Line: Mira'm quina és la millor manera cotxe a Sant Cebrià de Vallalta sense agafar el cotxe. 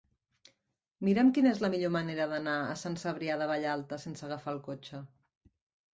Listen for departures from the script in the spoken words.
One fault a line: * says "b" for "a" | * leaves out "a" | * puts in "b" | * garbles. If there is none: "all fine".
* says "d'anar" for "cotxe"